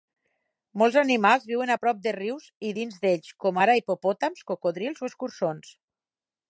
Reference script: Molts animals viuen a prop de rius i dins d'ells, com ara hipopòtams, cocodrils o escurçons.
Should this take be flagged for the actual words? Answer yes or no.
no